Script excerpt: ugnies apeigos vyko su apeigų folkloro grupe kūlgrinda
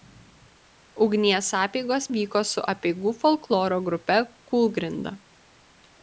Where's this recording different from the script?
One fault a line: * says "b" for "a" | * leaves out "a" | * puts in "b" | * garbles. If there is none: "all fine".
all fine